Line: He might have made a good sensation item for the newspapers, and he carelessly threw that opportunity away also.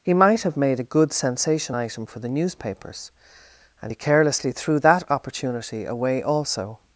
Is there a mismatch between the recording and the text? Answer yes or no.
no